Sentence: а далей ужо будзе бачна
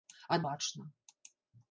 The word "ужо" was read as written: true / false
false